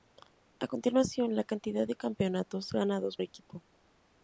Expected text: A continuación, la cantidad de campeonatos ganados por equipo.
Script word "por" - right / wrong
wrong